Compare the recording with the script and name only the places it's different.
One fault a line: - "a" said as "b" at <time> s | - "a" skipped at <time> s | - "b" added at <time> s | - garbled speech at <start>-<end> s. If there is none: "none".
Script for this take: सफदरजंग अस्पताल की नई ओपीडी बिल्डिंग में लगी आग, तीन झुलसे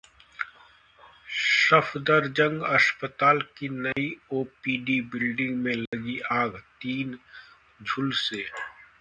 none